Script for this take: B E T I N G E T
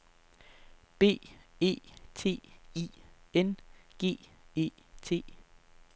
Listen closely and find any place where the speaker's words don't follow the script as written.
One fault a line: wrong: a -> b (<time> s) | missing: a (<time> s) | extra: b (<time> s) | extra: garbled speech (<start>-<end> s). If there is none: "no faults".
no faults